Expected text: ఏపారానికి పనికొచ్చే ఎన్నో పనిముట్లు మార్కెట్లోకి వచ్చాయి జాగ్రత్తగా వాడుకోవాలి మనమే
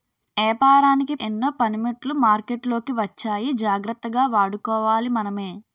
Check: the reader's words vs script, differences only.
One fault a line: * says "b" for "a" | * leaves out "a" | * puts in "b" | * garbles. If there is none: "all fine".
* leaves out "పనికొచ్చే"